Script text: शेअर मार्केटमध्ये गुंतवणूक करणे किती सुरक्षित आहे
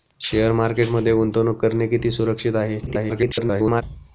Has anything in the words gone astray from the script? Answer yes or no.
yes